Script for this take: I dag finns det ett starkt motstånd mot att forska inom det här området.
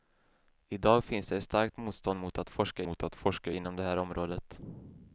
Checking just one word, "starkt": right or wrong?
right